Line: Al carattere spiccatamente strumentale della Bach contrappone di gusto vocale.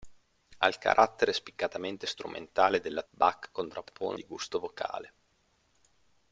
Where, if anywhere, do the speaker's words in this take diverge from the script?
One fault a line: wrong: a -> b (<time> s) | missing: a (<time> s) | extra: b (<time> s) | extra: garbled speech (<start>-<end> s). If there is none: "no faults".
no faults